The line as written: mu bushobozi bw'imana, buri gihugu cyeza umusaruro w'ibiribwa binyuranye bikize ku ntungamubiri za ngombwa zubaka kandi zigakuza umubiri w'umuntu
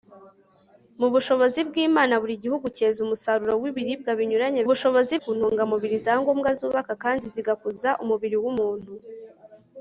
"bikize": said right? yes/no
no